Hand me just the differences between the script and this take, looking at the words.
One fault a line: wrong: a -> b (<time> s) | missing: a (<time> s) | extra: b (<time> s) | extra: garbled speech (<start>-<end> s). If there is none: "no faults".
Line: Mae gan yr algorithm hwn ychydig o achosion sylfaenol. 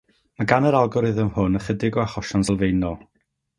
no faults